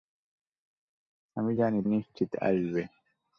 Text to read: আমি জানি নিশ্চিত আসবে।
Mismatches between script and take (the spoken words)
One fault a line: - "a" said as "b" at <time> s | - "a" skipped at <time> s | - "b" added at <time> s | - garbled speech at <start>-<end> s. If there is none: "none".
none